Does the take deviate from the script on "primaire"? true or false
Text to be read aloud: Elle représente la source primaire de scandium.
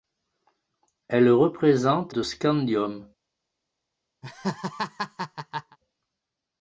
true